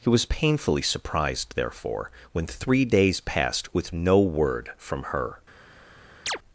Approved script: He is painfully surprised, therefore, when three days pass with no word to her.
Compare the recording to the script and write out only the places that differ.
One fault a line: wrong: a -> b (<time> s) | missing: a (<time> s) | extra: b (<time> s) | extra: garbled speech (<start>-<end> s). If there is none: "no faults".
wrong: is -> was (0.1 s)
wrong: pass -> passed (3.2 s)
wrong: to -> from (4.8 s)